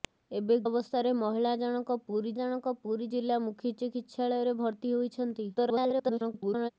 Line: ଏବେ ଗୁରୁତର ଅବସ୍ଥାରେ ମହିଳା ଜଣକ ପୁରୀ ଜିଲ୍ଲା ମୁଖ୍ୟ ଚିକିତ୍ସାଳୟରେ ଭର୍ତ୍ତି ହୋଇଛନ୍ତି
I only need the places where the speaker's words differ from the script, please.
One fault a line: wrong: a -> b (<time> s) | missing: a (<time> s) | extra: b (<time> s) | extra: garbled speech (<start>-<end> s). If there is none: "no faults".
missing: ଗୁରୁତର (0.6 s)
extra: ଜଣକ ପୁରୀ (2.4 s)
extra: garbled speech (5.5-6.7 s)